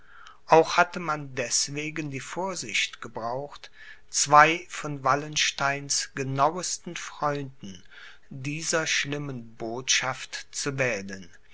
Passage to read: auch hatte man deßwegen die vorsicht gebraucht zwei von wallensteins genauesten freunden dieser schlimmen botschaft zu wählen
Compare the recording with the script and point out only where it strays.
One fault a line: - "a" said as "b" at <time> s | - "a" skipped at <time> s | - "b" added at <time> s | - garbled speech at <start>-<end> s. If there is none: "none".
none